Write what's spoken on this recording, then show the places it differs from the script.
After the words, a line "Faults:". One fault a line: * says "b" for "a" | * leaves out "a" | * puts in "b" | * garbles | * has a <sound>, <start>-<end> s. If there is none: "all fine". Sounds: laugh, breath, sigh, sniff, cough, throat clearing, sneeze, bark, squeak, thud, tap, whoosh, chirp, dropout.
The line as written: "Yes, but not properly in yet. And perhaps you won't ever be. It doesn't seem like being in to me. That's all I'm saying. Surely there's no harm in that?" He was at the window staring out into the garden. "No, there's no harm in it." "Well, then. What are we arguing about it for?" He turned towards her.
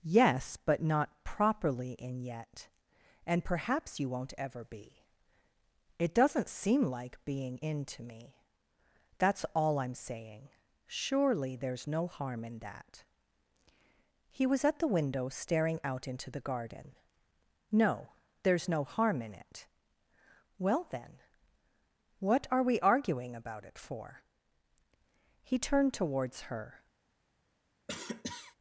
"Yes, but not properly in yet. And perhaps you won't ever be. It doesn't seem like being in to me. That's all I'm saying. Surely there's no harm in that?" He was at the window staring out into the garden. "No, there's no harm in it." "Well, then. What are we arguing about it for?" He turned towards her.
Faults:
* has a cough, 27.9-28.6 s